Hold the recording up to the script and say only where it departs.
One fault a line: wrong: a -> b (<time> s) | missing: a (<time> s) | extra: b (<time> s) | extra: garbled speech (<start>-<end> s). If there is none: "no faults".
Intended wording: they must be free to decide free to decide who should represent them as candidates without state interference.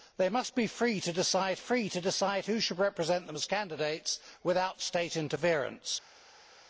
no faults